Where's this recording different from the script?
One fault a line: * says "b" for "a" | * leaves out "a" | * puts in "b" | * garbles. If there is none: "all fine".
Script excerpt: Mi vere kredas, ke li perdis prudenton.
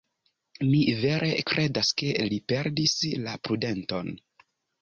* puts in "la"